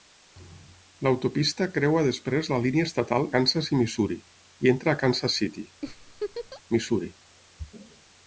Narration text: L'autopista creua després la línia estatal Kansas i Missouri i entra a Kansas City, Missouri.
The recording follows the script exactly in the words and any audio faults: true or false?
false